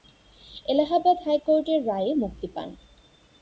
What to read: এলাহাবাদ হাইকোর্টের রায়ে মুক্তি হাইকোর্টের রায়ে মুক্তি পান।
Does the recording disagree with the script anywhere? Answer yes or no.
yes